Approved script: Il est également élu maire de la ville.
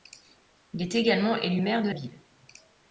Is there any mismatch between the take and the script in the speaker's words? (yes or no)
yes